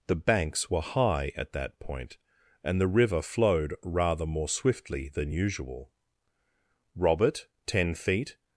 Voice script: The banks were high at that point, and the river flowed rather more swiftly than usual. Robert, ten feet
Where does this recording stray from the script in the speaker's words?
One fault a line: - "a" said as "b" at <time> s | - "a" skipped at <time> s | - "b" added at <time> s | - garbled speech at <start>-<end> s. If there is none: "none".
none